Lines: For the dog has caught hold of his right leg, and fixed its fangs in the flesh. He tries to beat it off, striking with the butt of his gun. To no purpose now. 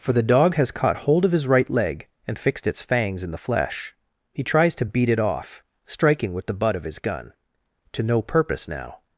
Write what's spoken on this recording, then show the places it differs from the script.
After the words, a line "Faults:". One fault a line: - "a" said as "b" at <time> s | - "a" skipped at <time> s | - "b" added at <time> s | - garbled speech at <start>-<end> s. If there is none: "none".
For the dog has caught hold of his right leg, and fixed its fangs in the flesh. He tries to beat it off, striking with the butt of his gun. To no purpose now.
Faults:
none